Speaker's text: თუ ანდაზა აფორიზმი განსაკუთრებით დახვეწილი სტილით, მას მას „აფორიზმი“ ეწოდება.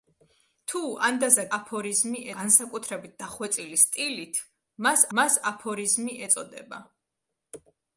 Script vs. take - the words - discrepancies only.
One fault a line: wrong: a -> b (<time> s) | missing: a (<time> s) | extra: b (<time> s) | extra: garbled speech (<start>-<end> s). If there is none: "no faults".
no faults